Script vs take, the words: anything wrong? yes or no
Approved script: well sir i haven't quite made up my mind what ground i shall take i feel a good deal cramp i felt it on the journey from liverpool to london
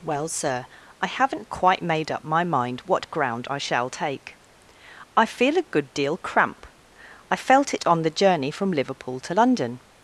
no